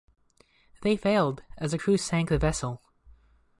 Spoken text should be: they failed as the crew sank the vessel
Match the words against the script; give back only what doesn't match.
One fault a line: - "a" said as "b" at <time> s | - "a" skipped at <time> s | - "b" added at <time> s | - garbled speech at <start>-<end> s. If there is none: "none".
none